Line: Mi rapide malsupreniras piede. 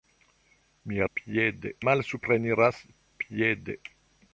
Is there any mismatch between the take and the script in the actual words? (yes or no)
yes